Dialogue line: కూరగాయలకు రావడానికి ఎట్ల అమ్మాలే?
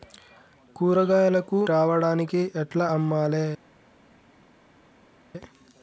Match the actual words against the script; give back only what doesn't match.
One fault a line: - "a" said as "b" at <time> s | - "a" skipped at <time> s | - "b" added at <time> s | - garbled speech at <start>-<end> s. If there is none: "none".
none